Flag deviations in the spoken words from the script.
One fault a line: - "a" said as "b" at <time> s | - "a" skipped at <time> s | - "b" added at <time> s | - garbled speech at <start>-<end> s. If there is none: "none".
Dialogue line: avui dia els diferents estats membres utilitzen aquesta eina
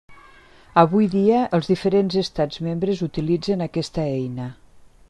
none